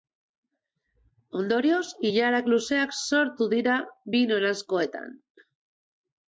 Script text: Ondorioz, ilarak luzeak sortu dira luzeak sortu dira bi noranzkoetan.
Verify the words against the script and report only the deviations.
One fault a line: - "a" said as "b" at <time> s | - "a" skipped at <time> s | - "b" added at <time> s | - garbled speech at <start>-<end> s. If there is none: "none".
- "luzeak sortu dira" skipped at 3.8 s